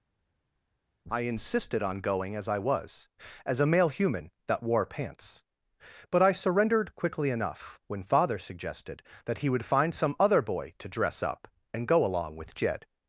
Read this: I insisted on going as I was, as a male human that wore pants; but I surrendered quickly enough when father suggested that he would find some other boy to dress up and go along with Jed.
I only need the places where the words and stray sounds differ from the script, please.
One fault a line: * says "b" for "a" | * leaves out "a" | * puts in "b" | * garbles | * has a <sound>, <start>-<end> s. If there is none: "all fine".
all fine